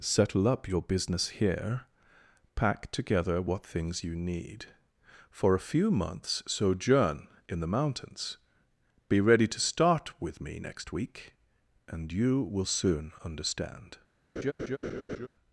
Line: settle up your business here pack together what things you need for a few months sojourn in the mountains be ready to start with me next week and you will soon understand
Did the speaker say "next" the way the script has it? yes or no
yes